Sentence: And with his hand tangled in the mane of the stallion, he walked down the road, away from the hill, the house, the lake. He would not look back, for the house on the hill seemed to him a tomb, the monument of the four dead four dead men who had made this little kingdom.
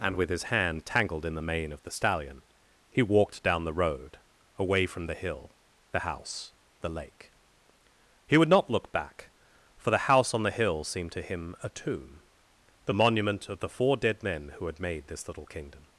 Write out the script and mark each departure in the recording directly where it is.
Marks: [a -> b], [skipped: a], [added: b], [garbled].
And with his hand tangled in the mane of the stallion, he walked down the road, away from the hill, the house, the lake. He would not look back, for the house on the hill seemed to him a tomb, the monument of the four dead [skipped: four dead] men who had made this little kingdom.